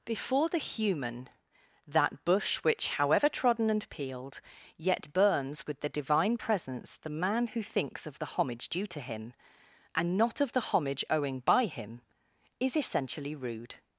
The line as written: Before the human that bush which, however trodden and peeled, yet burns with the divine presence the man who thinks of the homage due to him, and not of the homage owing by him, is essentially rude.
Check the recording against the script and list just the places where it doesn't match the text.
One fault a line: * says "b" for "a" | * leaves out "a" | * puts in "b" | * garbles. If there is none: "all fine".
all fine